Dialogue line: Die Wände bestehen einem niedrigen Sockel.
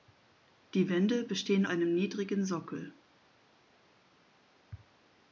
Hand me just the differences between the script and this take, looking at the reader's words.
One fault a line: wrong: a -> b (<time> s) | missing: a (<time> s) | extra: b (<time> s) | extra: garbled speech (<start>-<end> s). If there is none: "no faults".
no faults